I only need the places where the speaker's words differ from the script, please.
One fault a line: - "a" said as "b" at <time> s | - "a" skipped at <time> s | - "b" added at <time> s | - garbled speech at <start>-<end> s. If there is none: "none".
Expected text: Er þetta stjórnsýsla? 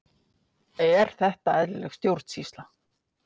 - "eðlileg" added at 1.6 s